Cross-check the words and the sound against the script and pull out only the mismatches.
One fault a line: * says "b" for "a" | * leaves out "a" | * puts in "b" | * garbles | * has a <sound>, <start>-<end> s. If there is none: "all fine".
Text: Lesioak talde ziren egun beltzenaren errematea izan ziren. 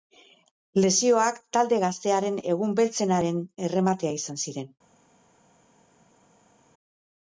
* says "gaztearen" for "ziren"